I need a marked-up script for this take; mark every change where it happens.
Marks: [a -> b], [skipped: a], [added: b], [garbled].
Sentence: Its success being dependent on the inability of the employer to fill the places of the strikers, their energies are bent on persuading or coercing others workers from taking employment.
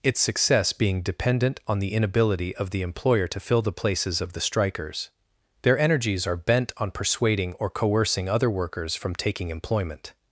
Its success being dependent on the inability of the employer to fill the places of the strikers, their energies are bent on persuading or coercing [others -> other] workers from taking employment.